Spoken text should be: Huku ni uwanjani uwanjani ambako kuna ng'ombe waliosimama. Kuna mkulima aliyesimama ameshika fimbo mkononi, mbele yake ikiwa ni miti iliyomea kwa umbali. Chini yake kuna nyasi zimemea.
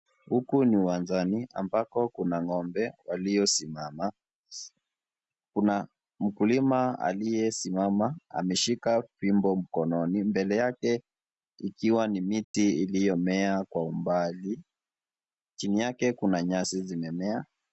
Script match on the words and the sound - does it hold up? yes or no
no